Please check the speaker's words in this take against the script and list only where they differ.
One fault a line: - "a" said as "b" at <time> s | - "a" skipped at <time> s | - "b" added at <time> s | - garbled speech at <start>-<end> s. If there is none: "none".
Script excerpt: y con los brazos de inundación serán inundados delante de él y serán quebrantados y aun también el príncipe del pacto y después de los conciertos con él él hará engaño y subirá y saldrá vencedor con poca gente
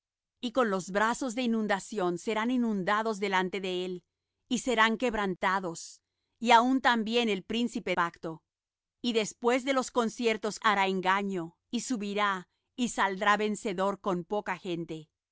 - "del" skipped at 7.9 s
- "con él él" skipped at 10.6 s